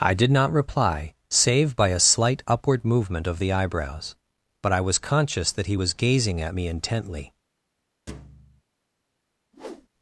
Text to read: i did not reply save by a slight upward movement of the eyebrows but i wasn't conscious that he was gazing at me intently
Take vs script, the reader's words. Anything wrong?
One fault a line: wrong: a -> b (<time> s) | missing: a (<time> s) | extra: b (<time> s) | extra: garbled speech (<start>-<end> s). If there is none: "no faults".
wrong: wasn't -> was (4.8 s)